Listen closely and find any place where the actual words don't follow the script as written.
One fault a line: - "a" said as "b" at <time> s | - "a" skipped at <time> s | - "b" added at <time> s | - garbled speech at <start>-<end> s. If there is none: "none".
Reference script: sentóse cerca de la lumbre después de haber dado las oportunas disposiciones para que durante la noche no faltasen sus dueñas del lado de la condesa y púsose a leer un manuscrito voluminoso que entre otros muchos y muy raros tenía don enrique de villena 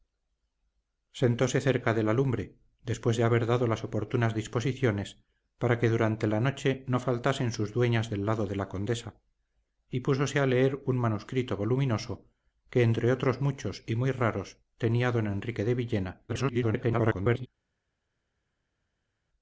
- garbled speech at 16.3-17.5 s